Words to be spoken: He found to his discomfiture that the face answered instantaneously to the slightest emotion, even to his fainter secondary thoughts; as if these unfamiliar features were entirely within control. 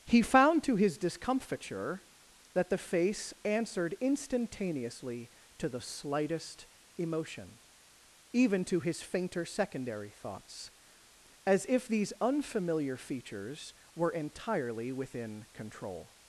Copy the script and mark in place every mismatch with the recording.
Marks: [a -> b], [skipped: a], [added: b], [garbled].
He found to his discomfiture that the face answered instantaneously to the slightest emotion, even to his fainter secondary thoughts; as if these unfamiliar features were entirely within control.